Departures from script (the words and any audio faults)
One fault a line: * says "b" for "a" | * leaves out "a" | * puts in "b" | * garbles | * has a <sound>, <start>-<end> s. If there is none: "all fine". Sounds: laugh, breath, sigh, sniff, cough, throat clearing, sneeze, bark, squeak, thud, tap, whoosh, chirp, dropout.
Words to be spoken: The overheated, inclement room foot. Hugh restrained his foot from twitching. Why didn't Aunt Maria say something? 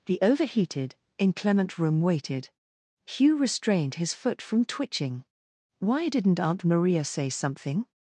* says "waited" for "foot"